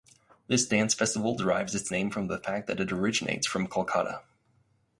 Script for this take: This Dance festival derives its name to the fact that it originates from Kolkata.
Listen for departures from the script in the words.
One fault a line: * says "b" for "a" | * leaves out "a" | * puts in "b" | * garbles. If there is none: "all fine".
* says "from" for "to"